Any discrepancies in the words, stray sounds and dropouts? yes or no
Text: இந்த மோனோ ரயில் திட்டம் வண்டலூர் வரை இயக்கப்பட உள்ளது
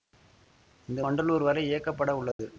yes